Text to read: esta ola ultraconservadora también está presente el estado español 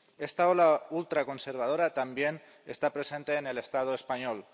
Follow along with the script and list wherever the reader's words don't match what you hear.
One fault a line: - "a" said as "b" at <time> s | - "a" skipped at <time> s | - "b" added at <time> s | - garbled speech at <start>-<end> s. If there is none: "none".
- "en" added at 3.4 s